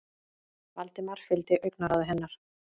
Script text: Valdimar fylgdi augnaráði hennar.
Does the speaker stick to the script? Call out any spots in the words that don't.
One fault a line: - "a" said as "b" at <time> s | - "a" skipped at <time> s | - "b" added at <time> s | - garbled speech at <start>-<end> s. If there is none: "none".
none